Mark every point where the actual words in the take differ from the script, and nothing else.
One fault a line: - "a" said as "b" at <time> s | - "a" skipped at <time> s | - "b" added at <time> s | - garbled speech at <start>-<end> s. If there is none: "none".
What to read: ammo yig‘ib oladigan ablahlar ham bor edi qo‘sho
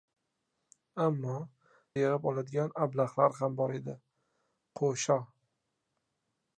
none